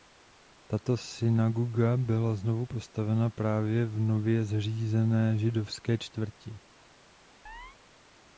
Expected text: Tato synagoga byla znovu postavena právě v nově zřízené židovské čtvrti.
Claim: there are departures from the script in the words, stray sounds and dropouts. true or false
true